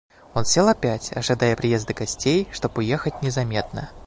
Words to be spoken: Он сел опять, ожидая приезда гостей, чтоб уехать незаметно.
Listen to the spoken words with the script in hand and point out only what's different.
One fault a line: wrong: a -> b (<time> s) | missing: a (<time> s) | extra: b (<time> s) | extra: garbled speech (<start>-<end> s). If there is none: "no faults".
no faults